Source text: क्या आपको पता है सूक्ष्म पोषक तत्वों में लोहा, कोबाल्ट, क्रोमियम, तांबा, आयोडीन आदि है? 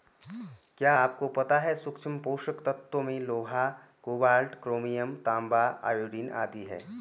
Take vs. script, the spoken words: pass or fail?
pass